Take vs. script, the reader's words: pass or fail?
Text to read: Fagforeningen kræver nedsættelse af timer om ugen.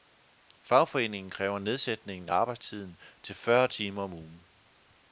fail